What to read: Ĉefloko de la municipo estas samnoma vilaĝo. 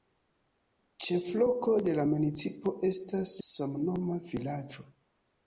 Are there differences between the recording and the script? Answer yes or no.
no